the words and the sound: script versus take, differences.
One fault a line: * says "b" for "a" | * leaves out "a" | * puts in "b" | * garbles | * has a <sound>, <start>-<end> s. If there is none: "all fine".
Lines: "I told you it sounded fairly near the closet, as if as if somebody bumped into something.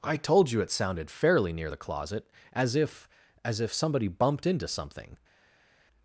all fine